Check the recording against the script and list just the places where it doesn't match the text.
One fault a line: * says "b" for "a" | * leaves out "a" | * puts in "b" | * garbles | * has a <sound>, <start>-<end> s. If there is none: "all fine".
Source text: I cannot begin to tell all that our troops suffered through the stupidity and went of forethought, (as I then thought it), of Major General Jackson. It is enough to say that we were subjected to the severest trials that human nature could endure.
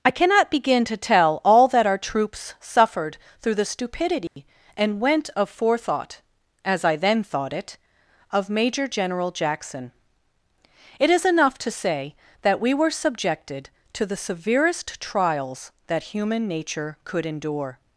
* has a dropout, 4.3-4.4 s